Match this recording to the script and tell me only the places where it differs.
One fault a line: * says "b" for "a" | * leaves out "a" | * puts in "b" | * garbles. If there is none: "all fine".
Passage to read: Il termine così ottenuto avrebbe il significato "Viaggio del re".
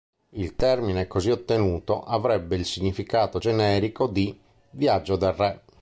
* puts in "generico di"